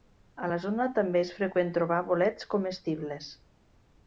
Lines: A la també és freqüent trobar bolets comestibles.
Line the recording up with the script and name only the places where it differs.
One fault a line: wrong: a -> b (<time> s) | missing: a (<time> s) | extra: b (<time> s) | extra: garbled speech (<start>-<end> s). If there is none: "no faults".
extra: zona (0.6 s)